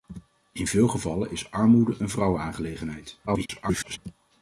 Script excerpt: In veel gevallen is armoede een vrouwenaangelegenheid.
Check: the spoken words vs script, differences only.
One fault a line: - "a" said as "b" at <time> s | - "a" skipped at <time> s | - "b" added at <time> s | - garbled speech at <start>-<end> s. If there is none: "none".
- garbled speech at 3.3-4.0 s